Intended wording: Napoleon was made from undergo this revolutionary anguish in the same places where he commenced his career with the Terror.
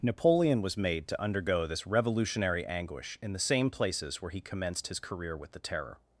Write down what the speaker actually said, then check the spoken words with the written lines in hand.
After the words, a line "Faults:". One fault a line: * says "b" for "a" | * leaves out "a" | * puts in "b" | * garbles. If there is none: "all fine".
Napoleon was made to undergo this revolutionary anguish in the same places where he commenced his career with the Terror.
Faults:
* says "to" for "from"